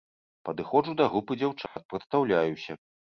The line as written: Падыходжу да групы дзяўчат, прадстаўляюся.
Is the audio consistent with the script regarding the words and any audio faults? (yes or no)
no